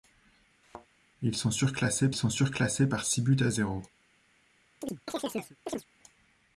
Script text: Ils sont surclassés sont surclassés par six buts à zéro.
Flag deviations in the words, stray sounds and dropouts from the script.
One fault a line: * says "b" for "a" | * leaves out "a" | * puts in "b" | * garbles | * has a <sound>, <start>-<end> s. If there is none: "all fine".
* has a thud, 0.6-0.9 s
* has a chirp, 4.8-5.9 s